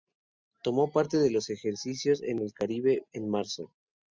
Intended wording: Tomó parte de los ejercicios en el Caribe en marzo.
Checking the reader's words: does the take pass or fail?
pass